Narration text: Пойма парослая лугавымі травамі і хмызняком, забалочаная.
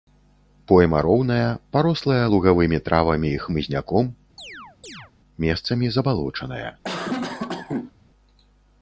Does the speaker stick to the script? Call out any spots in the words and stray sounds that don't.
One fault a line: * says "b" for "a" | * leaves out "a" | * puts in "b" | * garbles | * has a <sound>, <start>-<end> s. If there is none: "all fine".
* puts in "роўная"
* has a chirp, 4.4-5.1 s
* puts in "месцамі"
* has a cough, 6.8-7.9 s